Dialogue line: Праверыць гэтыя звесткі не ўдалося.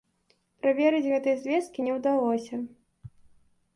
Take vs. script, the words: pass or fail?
pass